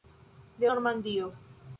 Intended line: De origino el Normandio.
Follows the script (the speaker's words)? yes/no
no